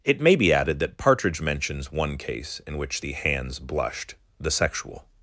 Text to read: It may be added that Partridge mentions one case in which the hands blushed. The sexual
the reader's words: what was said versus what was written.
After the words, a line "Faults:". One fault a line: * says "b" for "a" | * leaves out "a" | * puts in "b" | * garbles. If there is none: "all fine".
It may be added that Partridge mentions one case in which the hands blushed. The sexual
Faults:
all fine